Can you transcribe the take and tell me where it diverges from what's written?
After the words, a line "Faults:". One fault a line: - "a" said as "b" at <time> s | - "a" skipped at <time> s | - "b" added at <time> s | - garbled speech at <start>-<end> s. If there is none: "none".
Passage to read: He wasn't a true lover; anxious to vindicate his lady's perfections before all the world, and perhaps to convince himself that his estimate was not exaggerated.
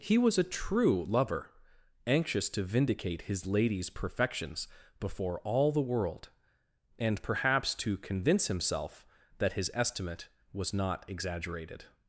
He was a true lover; anxious to vindicate his lady's perfections before all the world, and perhaps to convince himself that his estimate was not exaggerated.
Faults:
- "wasn't" said as "was" at 0.2 s